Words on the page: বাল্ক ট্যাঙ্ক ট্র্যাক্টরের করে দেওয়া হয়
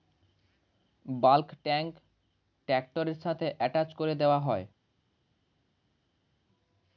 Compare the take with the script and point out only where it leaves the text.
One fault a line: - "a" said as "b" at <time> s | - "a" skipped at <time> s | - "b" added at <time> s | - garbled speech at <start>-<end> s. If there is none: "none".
- "সাথে অ্যাটাচ" added at 3.2 s